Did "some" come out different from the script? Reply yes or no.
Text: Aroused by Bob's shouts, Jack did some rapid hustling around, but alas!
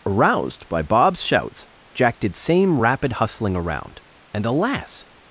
yes